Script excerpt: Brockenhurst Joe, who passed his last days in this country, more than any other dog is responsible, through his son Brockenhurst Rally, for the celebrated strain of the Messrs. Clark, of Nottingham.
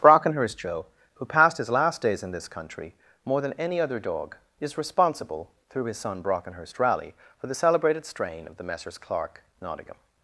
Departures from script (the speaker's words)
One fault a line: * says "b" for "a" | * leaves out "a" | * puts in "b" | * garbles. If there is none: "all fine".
* leaves out "of"